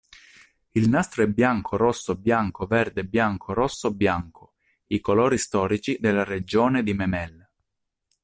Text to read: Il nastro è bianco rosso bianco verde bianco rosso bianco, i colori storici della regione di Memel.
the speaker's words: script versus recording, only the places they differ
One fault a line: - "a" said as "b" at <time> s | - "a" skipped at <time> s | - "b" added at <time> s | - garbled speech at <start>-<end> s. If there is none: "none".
none